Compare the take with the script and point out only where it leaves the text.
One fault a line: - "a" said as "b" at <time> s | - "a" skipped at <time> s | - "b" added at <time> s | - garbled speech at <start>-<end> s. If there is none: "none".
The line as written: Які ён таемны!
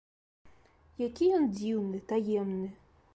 - "дзіўны" added at 1.6 s